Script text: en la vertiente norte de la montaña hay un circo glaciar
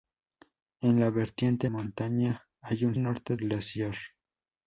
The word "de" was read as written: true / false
false